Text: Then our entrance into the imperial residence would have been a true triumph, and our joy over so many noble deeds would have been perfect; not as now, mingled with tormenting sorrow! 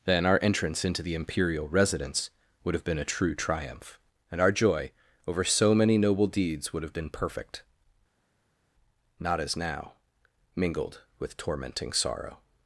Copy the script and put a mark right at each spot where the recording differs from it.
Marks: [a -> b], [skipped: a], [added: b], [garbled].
Then our entrance into the imperial residence would have been a true triumph, and our joy over so many noble deeds would have been perfect; not as now, mingled with tormenting sorrow!